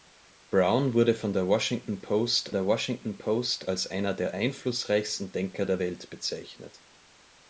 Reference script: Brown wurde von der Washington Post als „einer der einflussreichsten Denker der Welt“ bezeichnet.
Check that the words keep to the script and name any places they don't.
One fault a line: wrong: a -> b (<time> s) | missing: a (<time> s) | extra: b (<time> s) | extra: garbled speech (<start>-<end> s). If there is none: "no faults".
extra: der Washington Post (2.5 s)